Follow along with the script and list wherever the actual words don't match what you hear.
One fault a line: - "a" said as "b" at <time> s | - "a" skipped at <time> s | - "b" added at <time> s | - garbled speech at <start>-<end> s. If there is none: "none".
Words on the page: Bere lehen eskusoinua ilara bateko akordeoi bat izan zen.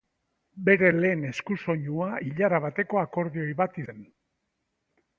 - "izan" skipped at 3.8 s